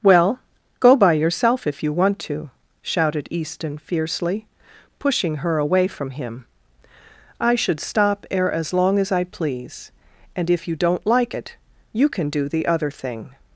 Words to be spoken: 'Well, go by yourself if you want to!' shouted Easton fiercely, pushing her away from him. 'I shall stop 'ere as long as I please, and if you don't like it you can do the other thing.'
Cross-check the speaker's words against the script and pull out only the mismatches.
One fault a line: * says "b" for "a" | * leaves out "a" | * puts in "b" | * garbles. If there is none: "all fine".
* says "should" for "shall"